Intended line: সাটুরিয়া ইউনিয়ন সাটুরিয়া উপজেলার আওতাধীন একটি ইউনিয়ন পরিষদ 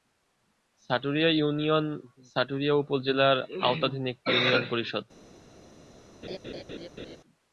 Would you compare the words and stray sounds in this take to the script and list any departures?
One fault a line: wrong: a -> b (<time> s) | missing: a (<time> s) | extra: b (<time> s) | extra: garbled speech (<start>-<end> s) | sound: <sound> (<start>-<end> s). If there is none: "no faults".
sound: laugh (6.2-7.2 s)